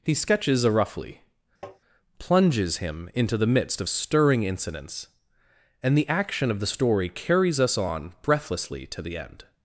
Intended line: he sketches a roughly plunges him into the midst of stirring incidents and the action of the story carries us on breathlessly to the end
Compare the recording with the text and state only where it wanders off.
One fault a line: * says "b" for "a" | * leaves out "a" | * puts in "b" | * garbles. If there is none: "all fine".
all fine